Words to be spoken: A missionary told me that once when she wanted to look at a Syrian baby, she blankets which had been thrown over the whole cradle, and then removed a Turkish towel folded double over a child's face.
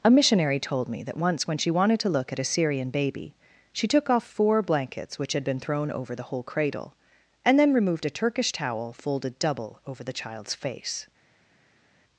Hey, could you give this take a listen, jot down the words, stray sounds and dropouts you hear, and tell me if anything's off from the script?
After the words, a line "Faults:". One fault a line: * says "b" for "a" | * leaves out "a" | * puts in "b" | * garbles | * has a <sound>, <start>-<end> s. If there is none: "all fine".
A missionary told me that once when she wanted to look at a Syrian baby, she took off four blankets which had been thrown over the whole cradle, and then removed a Turkish towel folded double over the child's face.
Faults:
* puts in "took off four"
* says "the" for "a"